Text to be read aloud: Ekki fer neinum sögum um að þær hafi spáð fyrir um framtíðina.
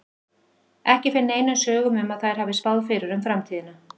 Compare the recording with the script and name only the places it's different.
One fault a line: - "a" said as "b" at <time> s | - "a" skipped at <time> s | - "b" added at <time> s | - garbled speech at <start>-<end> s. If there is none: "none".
none